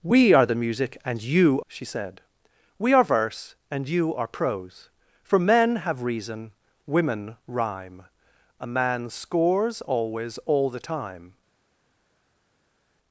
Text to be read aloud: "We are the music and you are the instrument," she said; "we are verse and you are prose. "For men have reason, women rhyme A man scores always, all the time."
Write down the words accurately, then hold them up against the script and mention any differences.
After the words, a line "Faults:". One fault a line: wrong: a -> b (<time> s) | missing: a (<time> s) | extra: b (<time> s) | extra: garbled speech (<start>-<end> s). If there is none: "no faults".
"We are the music and you," she said; "we are verse and you are prose. "For men have reason, women rhyme A man scores always, all the time."
Faults:
missing: are the instrument (1.6 s)